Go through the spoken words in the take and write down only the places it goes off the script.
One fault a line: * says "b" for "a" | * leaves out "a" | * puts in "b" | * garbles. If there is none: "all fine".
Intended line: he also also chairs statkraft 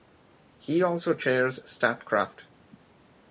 * leaves out "also"